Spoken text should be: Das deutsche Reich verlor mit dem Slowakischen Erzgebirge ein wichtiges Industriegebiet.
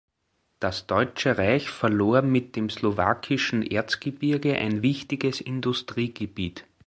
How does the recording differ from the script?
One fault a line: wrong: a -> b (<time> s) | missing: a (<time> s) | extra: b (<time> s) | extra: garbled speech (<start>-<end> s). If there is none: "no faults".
no faults